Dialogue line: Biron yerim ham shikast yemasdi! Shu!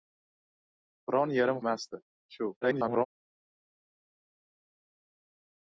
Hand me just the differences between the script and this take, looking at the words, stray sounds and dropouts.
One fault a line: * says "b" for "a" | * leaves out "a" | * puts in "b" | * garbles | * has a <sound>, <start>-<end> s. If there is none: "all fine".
* leaves out "ham shikast"
* garbles